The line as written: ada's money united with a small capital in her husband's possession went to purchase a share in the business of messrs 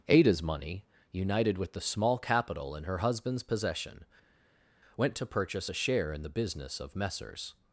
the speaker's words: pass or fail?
fail